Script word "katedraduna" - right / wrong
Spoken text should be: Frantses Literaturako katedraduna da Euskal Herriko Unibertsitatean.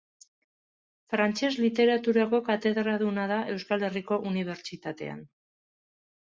right